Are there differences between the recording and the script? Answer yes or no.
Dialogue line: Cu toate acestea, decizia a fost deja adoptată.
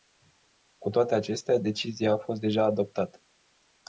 no